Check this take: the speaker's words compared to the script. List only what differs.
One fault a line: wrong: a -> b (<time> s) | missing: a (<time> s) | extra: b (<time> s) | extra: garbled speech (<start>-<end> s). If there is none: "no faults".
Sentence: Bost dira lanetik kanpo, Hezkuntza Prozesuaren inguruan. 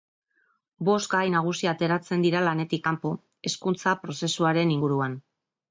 extra: gai nagusi ateratzen (1.1 s)